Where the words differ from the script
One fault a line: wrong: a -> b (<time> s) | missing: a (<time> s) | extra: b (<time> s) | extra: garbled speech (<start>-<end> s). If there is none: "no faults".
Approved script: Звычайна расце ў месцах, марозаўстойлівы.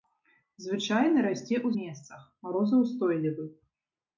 no faults